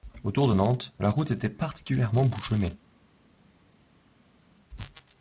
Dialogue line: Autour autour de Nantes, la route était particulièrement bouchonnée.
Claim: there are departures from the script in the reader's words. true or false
true